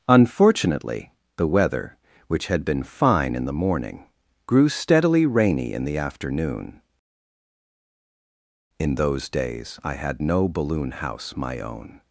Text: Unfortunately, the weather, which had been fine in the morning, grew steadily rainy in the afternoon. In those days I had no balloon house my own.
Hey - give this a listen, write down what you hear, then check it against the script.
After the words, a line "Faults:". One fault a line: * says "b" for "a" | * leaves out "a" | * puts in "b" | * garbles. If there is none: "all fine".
Unfortunately, the weather, which had been fine in the morning, grew steadily rainy in the afternoon. In those days I had no balloon house my own.
Faults:
all fine